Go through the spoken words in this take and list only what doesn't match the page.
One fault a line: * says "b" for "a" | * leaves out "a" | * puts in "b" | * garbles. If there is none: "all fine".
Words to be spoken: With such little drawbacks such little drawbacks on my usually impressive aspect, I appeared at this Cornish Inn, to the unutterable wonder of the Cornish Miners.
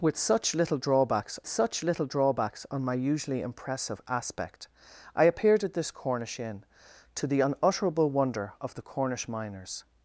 all fine